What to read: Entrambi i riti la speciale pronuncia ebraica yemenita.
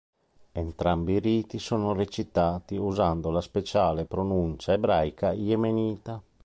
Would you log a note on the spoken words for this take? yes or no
yes